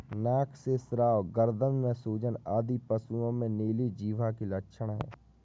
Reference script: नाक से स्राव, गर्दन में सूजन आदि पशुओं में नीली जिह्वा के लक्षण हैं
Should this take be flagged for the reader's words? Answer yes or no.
no